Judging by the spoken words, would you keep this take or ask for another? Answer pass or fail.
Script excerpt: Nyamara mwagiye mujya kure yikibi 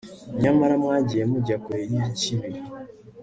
pass